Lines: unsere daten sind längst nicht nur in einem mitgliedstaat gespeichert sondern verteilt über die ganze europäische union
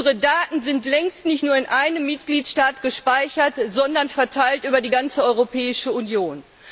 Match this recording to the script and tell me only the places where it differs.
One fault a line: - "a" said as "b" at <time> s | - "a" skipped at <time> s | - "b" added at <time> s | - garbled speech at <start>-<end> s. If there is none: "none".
none